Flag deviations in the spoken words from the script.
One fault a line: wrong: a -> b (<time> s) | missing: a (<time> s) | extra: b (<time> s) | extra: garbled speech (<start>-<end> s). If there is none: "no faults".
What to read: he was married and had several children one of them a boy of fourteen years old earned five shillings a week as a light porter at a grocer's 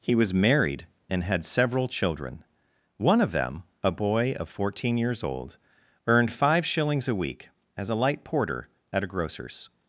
no faults